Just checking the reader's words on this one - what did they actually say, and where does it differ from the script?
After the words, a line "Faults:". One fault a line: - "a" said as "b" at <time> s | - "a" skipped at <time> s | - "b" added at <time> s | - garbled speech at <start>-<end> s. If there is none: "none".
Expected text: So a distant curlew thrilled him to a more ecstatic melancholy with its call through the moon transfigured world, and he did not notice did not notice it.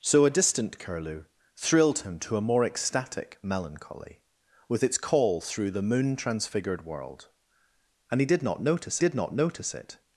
So a distant curlew thrilled him to a more ecstatic melancholy with its call through the moon transfigured world, and he did not notice did not notice it.
Faults:
none